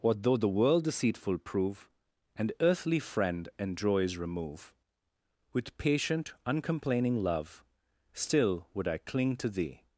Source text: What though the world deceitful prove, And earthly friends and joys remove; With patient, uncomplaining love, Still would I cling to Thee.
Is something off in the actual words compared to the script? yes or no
yes